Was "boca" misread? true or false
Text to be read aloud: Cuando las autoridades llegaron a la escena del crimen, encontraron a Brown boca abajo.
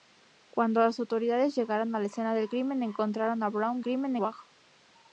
true